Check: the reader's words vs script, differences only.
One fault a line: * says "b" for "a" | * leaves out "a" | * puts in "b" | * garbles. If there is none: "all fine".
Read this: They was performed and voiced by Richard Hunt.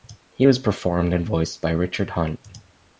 * says "He" for "They"